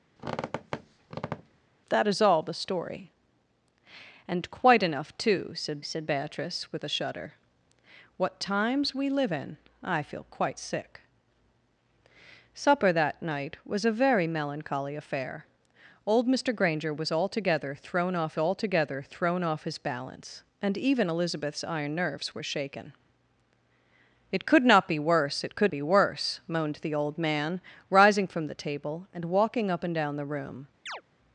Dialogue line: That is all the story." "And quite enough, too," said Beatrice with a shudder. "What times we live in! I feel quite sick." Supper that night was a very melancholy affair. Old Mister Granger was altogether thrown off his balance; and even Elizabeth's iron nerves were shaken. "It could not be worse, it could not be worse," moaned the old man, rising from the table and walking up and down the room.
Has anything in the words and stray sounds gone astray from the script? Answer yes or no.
yes